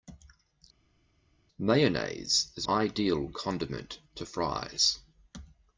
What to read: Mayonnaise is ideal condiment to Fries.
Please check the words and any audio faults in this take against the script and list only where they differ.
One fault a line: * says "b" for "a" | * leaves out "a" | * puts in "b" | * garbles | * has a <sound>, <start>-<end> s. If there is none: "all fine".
all fine